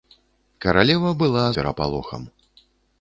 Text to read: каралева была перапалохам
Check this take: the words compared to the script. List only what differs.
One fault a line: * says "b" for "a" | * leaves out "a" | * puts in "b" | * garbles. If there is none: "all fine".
all fine